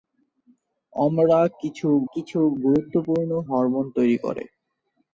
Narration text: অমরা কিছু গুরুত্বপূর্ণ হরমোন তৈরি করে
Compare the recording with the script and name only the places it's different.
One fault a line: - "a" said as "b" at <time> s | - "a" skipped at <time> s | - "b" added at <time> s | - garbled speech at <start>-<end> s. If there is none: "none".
- "কিছু" added at 2.1 s